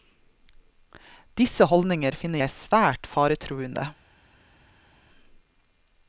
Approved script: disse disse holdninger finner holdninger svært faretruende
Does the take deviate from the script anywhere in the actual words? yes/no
yes